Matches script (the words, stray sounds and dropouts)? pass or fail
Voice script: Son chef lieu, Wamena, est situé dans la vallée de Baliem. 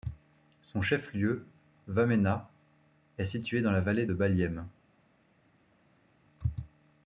pass